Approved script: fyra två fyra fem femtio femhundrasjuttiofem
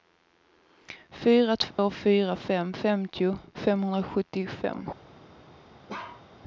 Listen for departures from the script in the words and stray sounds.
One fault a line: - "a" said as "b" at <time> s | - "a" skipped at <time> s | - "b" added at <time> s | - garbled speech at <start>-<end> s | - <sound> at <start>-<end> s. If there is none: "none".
- dropout at 1.7-1.8 s
- bark at 5.9-6.3 s